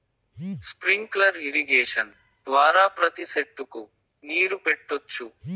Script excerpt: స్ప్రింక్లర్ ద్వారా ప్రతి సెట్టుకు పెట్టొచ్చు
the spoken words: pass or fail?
fail